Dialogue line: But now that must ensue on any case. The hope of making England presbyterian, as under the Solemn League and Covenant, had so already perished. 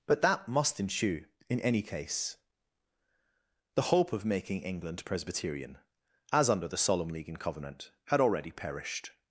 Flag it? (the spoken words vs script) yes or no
yes